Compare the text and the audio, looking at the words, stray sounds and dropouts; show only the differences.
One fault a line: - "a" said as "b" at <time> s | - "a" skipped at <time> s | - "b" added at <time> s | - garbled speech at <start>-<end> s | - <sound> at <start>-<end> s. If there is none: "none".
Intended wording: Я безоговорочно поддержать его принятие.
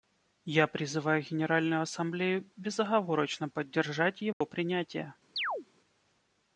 - "призываю Генеральную Ассамблею" added at 0.7 s
- dropout at 4.3-4.4 s
- chirp at 5.4-5.7 s